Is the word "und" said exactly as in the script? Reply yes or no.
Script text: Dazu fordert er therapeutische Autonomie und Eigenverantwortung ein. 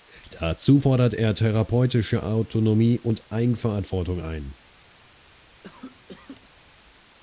yes